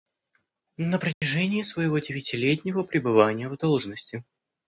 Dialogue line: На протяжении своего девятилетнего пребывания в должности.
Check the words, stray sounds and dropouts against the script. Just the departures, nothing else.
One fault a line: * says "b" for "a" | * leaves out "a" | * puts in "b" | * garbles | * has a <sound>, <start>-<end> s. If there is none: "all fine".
* has a dropout, 1.1-1.2 s